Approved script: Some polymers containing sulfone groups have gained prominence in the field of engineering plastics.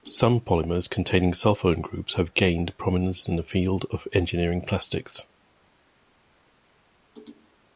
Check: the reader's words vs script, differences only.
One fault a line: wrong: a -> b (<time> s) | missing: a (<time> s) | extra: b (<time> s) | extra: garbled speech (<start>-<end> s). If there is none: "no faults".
no faults